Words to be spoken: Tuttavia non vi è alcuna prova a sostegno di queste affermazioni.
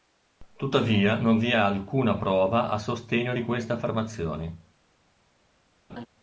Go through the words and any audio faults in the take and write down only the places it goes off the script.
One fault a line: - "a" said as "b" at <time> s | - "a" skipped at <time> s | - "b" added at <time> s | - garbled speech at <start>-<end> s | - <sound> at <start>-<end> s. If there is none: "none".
- laugh at 5.9-6.1 s